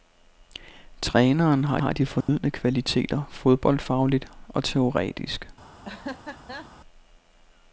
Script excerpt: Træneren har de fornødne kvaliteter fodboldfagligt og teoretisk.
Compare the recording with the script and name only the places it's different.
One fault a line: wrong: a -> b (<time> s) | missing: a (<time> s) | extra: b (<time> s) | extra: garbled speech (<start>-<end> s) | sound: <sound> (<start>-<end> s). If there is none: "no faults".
extra: har (1.8 s)
sound: dropout (2.2-2.3 s)
sound: laugh (5.8-6.7 s)